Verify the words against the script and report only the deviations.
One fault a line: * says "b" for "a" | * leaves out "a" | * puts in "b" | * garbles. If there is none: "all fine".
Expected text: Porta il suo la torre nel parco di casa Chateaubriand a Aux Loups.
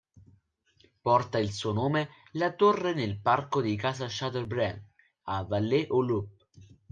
* puts in "nome"
* puts in "Vallée"